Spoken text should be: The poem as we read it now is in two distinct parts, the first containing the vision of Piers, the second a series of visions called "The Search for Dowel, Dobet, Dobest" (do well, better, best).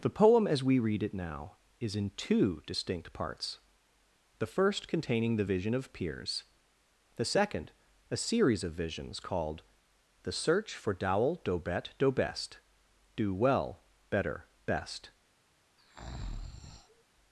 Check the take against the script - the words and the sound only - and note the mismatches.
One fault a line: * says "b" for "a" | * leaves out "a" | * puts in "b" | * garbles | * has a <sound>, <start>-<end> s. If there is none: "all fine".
* has a breath, 15.8-17.0 s